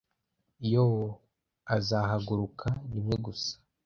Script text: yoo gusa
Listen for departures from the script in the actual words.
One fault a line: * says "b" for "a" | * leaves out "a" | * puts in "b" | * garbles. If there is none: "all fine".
* puts in "azahaguruka rimwe"